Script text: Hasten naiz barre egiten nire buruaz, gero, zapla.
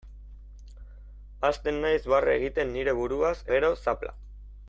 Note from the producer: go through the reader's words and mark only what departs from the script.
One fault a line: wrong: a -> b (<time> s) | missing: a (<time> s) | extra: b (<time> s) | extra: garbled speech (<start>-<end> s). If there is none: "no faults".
no faults